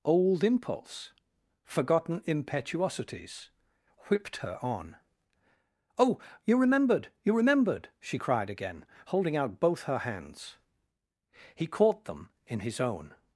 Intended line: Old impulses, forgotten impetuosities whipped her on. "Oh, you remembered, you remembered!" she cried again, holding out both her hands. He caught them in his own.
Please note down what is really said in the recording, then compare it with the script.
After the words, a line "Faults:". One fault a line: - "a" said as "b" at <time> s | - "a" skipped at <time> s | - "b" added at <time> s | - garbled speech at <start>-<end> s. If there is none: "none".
Old impulse, forgotten impetuosities whipped her on. "Oh, you remembered, you remembered!" she cried again, holding out both her hands. He caught them in his own.
Faults:
- "impulses" said as "impulse" at 0.4 s